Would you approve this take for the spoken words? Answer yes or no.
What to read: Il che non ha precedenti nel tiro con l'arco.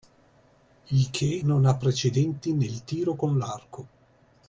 yes